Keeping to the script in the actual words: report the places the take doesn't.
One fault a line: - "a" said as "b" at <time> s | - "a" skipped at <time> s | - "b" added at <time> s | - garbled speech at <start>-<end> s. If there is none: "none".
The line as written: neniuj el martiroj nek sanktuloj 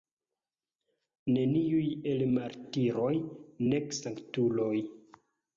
none